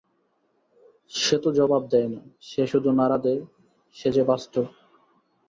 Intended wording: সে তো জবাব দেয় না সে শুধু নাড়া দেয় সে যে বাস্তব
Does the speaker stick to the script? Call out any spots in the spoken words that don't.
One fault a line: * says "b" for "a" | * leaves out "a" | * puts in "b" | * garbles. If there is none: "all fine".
all fine